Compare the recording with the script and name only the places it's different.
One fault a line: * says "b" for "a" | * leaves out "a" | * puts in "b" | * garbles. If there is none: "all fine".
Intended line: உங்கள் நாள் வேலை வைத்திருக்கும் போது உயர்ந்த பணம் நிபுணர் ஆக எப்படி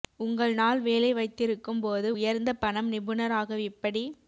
all fine